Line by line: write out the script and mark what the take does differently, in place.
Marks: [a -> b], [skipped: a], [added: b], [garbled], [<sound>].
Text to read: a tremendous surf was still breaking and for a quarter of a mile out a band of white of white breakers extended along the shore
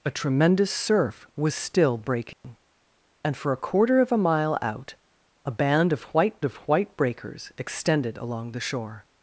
a tremendous surf was still breaking [dropout] and for a quarter of a mile out a band of white of white breakers extended along the shore